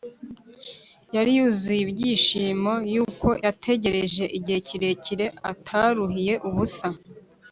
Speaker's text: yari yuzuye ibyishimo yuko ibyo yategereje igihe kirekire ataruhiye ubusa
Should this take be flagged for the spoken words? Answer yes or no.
yes